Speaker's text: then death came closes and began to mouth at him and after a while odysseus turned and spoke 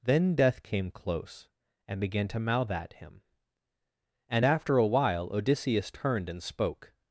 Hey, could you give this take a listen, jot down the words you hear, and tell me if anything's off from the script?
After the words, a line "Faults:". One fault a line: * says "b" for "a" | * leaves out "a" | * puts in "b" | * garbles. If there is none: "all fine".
then death came close and began to mouth at him and after a while odysseus turned and spoke
Faults:
* says "close" for "closes"